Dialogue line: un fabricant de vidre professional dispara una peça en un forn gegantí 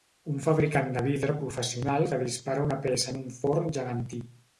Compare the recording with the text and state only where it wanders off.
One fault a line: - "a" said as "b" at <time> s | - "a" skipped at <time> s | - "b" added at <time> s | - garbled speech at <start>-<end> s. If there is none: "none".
- "que" added at 2.1 s